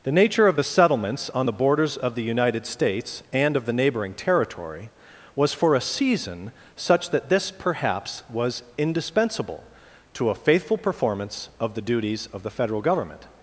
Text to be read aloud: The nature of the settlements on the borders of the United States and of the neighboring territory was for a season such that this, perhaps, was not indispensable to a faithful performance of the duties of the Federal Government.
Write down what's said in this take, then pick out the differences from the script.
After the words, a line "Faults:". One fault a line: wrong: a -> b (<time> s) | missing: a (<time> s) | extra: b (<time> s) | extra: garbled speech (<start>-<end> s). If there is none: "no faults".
The nature of the settlements on the borders of the United States and of the neighboring territory was for a season such that this, perhaps, was indispensable to a faithful performance of the duties of the Federal Government.
Faults:
missing: not (8.6 s)